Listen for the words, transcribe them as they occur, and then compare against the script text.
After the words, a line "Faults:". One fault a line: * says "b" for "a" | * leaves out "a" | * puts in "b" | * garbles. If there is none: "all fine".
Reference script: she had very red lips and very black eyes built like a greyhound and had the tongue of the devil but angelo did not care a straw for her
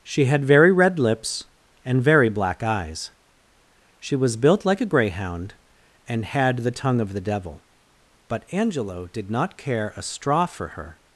she had very red lips and very black eyes she was built like a greyhound and had the tongue of the devil but angelo did not care a straw for her
Faults:
* puts in "she was"